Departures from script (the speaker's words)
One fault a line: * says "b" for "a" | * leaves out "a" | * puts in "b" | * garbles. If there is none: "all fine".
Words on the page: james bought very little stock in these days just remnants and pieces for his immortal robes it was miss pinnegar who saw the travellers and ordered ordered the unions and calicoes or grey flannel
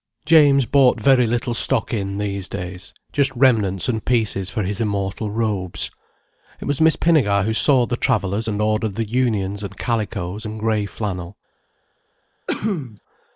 * leaves out "ordered"
* says "and" for "or"